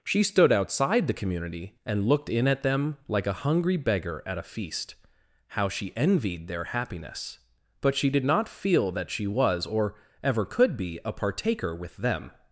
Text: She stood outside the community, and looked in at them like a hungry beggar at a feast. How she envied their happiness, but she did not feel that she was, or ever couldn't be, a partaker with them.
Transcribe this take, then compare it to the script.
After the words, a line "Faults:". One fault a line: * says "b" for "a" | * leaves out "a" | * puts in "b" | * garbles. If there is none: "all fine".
She stood outside the community, and looked in at them like a hungry beggar at a feast. How she envied their happiness, but she did not feel that she was, or ever could be, a partaker with them.
Faults:
* says "could" for "couldn't"